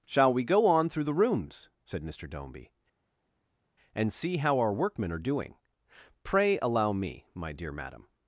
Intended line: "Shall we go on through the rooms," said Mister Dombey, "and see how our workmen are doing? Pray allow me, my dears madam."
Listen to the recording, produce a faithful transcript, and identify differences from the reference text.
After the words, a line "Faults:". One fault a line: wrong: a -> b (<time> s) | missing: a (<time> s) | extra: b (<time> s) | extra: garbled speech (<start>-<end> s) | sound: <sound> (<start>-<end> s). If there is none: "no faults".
"Shall we go on through the rooms," said Mister Dombey, "and see how our workmen are doing? Pray allow me, my dear madam."
Faults:
wrong: dears -> dear (7.5 s)